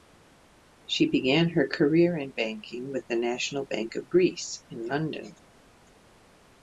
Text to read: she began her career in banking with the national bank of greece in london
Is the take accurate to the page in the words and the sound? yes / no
yes